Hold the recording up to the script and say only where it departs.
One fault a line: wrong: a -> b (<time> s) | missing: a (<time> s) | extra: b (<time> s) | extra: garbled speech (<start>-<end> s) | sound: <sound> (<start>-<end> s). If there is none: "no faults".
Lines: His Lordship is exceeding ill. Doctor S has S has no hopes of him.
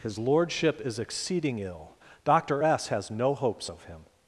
missing: S has (3.1 s)